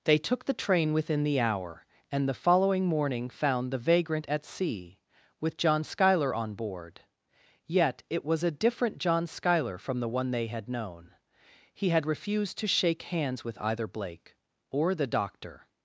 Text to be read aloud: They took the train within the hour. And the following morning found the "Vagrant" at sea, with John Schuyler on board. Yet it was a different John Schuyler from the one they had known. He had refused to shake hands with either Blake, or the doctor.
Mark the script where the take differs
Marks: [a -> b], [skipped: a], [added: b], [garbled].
They took the train within the hour. And the following morning found the "Vagrant" at sea, with John Schuyler on board. Yet it was a different John Schuyler from the one they had known. He had refused to shake hands with either Blake, or the doctor.